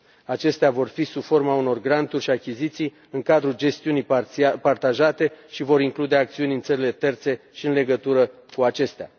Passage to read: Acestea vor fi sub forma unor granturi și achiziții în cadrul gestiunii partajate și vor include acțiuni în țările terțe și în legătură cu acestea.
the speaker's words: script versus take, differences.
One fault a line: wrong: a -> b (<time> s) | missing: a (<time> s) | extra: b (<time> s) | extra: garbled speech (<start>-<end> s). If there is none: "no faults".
no faults